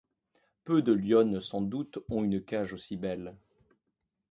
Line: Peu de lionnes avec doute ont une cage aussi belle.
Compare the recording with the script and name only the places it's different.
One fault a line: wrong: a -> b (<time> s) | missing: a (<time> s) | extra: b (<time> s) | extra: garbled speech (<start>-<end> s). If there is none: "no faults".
wrong: avec -> sans (1.4 s)